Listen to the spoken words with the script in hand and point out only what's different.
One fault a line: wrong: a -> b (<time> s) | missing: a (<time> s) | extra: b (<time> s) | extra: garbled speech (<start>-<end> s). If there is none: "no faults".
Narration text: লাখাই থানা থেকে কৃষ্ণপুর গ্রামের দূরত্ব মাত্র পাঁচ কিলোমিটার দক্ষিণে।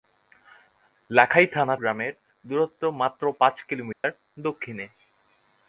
missing: থেকে কৃষ্ণপুর (1.8 s)